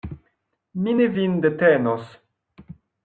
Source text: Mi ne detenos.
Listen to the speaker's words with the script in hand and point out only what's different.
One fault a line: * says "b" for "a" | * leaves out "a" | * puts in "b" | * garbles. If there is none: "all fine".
* puts in "vin"